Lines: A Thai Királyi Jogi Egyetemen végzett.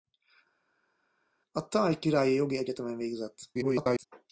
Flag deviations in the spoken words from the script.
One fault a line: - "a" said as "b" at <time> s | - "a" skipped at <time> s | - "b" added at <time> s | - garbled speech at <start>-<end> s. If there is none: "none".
- garbled speech at 3.5-4.1 s